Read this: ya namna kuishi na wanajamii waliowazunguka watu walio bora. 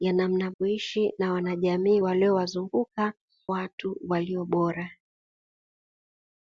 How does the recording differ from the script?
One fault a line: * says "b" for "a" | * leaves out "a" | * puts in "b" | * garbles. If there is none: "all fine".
all fine